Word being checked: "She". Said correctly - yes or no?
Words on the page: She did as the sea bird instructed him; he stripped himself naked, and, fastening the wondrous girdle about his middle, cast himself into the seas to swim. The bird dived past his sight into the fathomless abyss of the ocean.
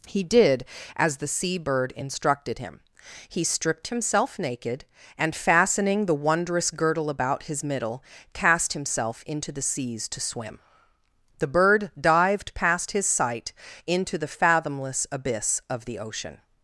no